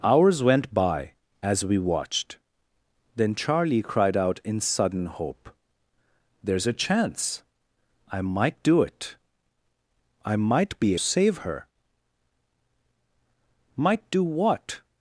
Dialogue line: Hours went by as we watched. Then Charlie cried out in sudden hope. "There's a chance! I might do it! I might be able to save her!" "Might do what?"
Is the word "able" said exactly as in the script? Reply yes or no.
no